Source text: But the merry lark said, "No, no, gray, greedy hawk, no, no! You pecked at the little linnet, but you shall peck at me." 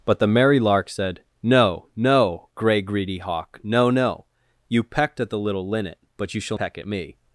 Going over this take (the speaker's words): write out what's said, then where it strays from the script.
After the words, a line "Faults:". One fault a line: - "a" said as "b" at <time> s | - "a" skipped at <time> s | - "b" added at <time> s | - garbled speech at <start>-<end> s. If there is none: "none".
But the merry lark said, "No, no, gray, greedy hawk, no, no! You pecked at the little linnet, but you shall peck at me."
Faults:
none